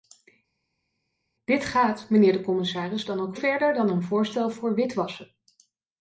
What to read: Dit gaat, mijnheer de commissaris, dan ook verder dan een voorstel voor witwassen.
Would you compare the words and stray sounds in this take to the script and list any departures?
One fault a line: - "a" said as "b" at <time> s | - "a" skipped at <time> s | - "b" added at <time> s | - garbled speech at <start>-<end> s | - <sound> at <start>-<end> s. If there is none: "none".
none